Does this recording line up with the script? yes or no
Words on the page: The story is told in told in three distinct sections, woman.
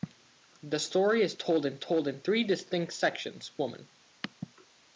yes